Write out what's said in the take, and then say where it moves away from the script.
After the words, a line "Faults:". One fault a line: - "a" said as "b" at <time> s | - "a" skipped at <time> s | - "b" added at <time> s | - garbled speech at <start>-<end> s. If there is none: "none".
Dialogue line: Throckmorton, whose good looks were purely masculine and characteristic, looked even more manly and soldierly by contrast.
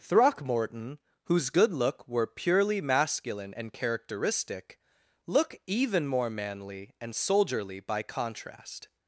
Throckmorton, whose good look were purely masculine and characteristic, look even more manly and soldierly by contrast.
Faults:
- "looks" said as "look" at 1.7 s
- "looked" said as "look" at 5.3 s